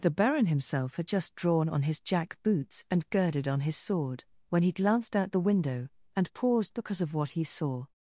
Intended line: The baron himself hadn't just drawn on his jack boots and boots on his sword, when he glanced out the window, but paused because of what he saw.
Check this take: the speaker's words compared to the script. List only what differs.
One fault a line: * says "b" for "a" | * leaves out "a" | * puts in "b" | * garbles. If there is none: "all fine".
* says "had" for "hadn't"
* says "girded" for "boots"
* says "and" for "but"